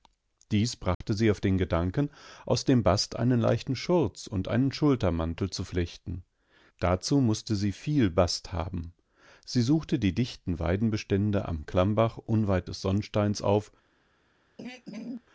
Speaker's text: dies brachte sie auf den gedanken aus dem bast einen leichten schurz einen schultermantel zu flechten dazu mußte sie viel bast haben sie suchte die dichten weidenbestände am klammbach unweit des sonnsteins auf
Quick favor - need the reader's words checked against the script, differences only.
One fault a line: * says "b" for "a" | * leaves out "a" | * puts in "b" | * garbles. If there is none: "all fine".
* puts in "und"